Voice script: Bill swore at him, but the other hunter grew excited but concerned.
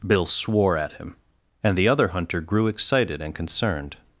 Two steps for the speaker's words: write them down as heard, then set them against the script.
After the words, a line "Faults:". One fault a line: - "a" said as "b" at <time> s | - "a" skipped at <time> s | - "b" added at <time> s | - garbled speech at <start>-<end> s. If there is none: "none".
Bill swore at him, and the other hunter grew excited and concerned.
Faults:
- "but" said as "and" at 1.6 s
- "but" said as "and" at 3.2 s